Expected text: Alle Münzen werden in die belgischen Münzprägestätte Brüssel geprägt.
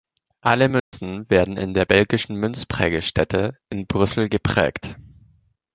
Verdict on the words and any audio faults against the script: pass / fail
fail